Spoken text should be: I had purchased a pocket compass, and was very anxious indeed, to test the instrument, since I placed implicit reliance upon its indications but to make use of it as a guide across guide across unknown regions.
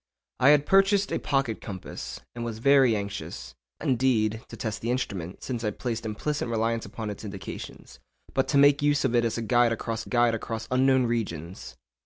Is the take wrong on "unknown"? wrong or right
right